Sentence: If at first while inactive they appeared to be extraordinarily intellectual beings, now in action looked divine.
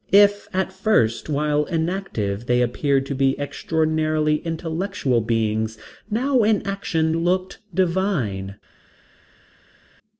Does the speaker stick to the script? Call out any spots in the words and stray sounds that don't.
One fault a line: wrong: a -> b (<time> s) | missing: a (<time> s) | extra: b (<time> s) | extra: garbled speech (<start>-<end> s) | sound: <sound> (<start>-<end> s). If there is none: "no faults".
no faults